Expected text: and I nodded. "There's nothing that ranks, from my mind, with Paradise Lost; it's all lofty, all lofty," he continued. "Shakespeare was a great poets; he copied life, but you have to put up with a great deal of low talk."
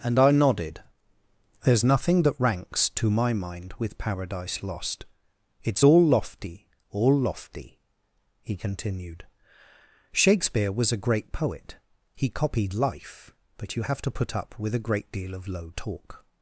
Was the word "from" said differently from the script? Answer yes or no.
yes